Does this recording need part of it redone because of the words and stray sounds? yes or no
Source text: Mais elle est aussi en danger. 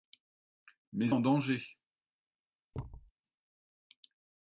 yes